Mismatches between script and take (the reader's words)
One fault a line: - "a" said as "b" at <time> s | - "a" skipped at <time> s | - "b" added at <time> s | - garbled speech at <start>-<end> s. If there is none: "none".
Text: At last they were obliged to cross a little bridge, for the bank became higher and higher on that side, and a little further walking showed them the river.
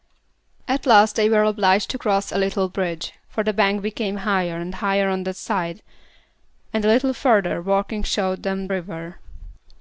- "the" skipped at 8.7 s